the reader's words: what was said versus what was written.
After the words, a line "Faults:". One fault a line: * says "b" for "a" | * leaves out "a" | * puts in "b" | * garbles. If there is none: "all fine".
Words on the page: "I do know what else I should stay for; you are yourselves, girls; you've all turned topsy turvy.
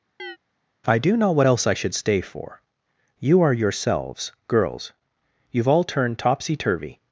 "I do know what else I should stay for; you are yourselves, girls; you've all turned topsy turvy.
Faults:
all fine